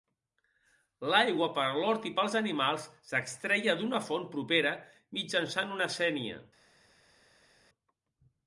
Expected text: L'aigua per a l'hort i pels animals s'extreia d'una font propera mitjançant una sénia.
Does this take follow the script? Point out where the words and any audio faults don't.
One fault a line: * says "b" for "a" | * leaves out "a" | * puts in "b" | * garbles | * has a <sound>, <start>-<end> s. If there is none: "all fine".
all fine